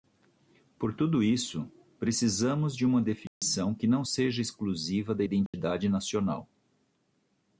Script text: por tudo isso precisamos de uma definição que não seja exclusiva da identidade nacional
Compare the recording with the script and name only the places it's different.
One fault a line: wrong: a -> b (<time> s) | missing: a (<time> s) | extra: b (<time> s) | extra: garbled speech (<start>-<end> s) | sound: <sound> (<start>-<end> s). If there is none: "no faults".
sound: dropout (3.3-3.4 s)
sound: dropout (5.5-5.5 s)